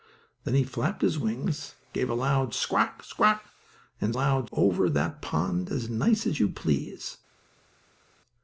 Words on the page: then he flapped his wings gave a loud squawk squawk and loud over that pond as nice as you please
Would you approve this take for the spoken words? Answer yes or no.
yes